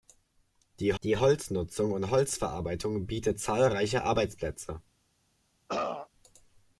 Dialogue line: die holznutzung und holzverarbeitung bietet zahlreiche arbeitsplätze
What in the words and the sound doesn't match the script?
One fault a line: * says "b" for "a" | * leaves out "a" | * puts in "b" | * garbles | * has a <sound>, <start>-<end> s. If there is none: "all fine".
* puts in "die"
* has a throat clearing, 5.7-6.1 s